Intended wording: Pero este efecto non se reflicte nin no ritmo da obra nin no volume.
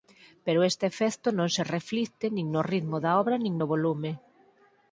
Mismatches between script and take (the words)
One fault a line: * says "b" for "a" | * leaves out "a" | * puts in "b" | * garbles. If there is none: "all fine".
all fine